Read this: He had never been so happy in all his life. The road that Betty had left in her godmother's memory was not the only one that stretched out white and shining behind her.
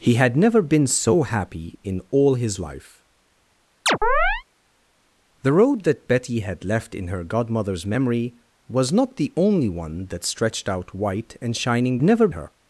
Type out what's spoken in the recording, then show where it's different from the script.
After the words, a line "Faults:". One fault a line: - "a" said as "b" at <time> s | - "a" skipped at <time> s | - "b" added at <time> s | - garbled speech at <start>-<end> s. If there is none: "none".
He had never been so happy in all his life. The road that Betty had left in her godmother's memory was not the only one that stretched out white and shining never her.
Faults:
- "behind" said as "never" at 12.0 s